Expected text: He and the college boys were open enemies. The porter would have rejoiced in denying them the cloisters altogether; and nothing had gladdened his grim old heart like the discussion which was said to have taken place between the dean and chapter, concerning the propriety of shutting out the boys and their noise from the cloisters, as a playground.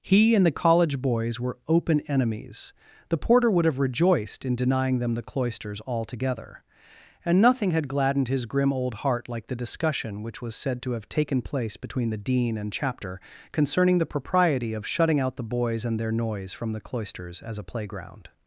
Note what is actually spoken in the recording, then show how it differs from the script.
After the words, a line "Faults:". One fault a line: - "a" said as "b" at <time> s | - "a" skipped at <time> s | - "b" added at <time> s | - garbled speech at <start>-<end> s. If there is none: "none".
He and the college boys were open enemies. The porter would have rejoiced in denying them the cloisters altogether; and nothing had gladdened his grim old heart like the discussion which was said to have taken place between the dean and chapter, concerning the propriety of shutting out the boys and their noise from the cloisters, as a playground.
Faults:
none